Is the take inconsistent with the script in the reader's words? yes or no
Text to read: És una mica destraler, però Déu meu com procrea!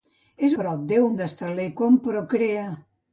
yes